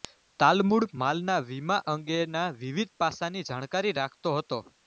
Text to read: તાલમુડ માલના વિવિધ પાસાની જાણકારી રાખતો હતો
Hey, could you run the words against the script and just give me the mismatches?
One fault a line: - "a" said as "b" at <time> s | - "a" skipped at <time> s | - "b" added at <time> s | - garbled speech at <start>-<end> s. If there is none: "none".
- "વીમા અંગેના" added at 1.5 s